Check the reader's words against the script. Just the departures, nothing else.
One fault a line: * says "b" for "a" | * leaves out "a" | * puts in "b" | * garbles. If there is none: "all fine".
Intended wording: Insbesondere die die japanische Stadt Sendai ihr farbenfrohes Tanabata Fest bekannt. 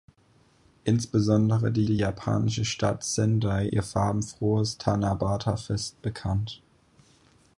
all fine